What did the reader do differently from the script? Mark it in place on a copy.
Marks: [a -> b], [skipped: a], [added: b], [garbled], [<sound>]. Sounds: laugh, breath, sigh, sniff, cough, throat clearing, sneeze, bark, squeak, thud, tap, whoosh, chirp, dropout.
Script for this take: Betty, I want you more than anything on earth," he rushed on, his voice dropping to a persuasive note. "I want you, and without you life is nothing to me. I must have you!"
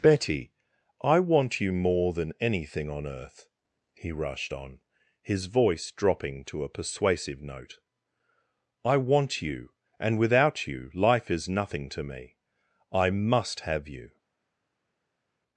Betty, I want you more than anything on earth," he rushed on, his voice dropping to a persuasive note. "I want you, and without you life is nothing to me. I must have you!"